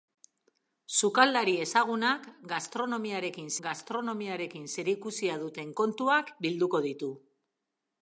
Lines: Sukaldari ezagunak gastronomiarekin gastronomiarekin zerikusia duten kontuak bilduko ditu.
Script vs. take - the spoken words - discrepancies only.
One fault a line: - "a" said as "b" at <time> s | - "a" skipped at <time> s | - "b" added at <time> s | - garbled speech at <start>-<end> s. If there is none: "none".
none